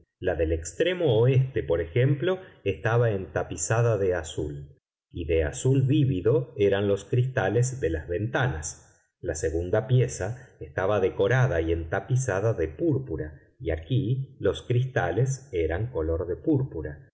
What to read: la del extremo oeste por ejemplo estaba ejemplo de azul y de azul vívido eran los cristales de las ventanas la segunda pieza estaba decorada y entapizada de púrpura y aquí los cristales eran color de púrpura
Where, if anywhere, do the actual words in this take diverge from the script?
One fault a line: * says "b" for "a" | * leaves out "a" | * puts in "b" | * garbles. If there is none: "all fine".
* says "entapizada" for "ejemplo"